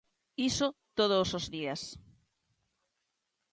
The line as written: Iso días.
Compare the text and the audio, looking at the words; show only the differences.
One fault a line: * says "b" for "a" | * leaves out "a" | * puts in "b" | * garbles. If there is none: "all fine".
* puts in "todos os"